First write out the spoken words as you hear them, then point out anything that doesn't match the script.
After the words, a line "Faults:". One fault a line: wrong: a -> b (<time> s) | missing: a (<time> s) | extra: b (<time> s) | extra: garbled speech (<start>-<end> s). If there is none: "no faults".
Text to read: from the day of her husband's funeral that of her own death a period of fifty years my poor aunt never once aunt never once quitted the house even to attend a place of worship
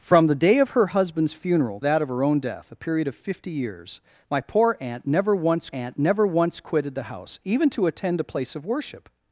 from the day of her husband's funeral that of her own death a period of fifty years my poor aunt never once aunt never once quitted the house even to attend a place of worship
Faults:
no faults